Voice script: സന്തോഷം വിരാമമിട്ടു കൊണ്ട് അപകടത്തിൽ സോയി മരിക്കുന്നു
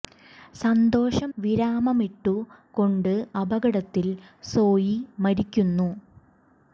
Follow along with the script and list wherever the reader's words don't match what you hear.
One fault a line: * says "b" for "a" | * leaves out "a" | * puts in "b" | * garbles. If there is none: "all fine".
all fine